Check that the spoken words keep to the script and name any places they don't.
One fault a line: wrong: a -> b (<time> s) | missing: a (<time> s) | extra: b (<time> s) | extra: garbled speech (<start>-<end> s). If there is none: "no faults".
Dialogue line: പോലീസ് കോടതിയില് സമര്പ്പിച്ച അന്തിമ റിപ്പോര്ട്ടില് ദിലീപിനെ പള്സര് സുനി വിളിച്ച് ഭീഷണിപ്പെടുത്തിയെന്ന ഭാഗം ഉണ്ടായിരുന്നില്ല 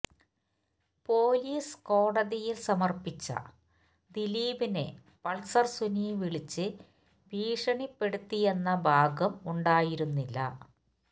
missing: അന്തിമ റിപ്പോര്ട്ടില് (3.3 s)